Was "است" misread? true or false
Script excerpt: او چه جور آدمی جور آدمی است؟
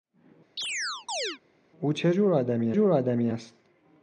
false